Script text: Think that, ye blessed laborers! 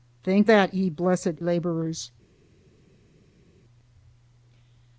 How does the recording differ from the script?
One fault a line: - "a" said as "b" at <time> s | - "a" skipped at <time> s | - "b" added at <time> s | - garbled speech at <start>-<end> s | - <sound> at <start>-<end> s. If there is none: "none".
none